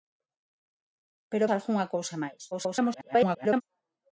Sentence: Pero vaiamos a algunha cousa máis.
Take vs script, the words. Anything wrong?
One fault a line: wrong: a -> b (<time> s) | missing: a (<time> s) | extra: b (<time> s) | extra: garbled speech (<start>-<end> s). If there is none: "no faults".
missing: vaiamos (1.5 s)
extra: garbled speech (2.5-3.6 s)